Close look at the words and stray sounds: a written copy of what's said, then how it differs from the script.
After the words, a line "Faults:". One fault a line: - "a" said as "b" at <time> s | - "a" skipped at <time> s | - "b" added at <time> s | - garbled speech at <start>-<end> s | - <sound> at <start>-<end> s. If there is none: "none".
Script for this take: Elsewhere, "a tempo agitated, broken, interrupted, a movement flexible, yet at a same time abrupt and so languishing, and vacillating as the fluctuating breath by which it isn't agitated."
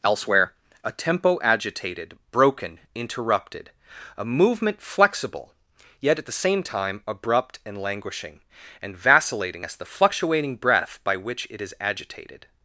Elsewhere, "a tempo agitated, broken, interrupted, a movement flexible, yet at the same time abrupt and languishing, and vacillating as the fluctuating breath by which it is agitated."
Faults:
- "a" said as "the" at 6.2 s
- "so" skipped at 7.8 s
- "isn't" said as "is" at 11.6 s